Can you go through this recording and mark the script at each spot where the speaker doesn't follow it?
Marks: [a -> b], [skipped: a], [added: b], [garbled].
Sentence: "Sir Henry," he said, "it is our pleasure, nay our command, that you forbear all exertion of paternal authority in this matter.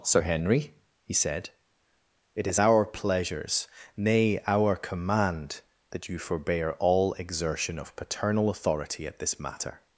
"Sir Henry," he said, "it is our [pleasure, -> pleasures] nay our command, that you forbear all exertion of paternal authority [in -> at] this matter.